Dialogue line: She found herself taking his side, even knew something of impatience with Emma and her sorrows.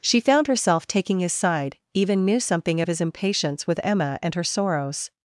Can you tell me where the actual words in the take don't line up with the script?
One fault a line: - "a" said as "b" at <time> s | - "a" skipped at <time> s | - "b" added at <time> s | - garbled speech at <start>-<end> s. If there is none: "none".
- "his" added at 2.9 s